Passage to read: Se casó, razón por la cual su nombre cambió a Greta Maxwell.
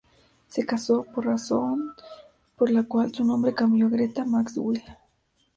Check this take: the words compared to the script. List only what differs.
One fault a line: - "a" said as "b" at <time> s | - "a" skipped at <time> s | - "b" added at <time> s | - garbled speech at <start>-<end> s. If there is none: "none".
none